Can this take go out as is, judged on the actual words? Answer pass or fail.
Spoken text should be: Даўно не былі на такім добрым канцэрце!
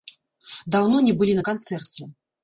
fail